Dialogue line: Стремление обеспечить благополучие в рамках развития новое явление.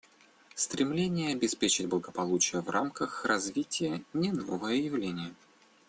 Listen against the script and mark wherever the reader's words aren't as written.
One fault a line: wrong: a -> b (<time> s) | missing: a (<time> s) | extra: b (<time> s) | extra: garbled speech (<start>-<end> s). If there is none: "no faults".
extra: не (4.1 s)